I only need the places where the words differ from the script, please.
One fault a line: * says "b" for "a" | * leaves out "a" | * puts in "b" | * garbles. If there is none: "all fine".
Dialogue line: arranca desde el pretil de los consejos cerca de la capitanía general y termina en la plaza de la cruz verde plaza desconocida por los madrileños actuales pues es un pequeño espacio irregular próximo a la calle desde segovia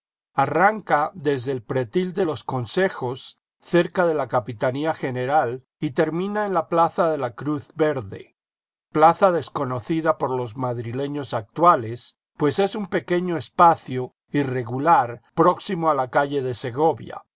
* says "de" for "desde"